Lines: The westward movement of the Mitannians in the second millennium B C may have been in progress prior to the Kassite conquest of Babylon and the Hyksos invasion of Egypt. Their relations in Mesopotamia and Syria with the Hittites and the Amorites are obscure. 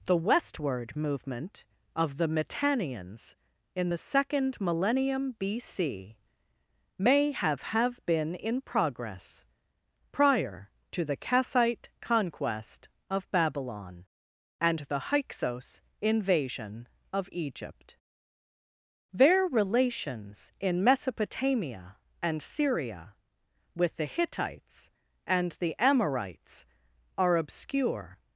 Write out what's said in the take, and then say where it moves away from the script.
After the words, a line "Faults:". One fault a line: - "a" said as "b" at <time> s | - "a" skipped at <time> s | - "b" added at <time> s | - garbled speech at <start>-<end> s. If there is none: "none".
The westward movement of the Mitannians in the second millennium B C may have have been in progress prior to the Kassite conquest of Babylon and the Hyksos invasion of Egypt. Their relations in Mesopotamia and Syria with the Hittites and the Amorites are obscure.
Faults:
- "have" added at 7.7 s